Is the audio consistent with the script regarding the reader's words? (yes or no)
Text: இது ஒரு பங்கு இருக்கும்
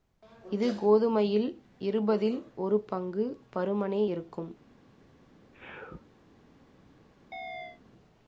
no